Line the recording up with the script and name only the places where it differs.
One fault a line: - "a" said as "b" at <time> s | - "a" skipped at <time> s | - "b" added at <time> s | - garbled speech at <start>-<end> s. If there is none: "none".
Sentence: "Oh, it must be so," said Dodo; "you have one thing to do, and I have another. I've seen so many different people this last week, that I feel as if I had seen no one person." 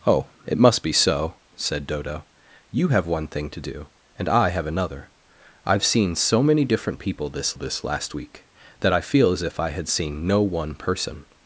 - "this" added at 7.6 s